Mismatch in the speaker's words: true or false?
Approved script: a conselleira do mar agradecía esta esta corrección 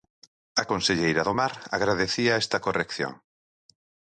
true